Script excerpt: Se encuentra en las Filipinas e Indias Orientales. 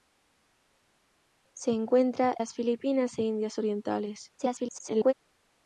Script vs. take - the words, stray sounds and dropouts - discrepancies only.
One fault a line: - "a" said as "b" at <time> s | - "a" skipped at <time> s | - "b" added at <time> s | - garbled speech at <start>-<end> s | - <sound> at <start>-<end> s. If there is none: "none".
- "en" skipped at 2.4 s
- garbled speech at 4.4-5.1 s